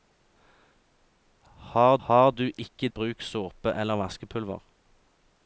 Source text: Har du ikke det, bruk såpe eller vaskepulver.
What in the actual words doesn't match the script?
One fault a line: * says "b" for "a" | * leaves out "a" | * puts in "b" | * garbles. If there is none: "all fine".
* puts in "har"
* leaves out "det"